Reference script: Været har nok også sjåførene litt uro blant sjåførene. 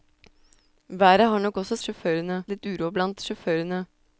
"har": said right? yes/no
yes